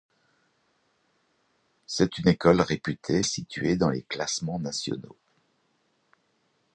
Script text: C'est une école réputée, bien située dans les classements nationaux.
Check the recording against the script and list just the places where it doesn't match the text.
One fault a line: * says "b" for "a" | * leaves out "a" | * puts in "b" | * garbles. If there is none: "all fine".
* leaves out "bien"